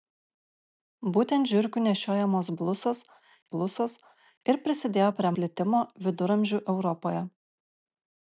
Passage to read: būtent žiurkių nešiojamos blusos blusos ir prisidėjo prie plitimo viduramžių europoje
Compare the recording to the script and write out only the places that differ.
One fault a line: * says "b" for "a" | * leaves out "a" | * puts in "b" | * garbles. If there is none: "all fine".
all fine